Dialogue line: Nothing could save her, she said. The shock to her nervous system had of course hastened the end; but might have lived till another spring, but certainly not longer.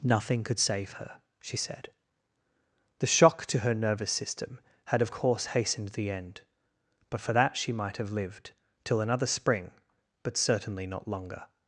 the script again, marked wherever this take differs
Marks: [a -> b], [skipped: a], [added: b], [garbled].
Nothing could save her, she said. The shock to her nervous system had of course hastened the end; but [added: for that she] might have lived till another spring, but certainly not longer.